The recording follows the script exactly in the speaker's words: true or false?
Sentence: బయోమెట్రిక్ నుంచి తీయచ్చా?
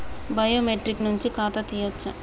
false